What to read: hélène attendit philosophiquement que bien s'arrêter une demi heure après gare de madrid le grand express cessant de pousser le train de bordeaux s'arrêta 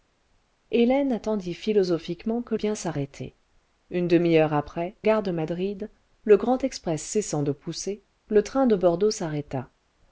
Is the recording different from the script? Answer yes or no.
no